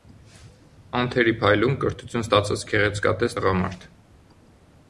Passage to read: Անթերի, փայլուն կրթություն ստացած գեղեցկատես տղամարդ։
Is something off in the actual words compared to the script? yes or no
no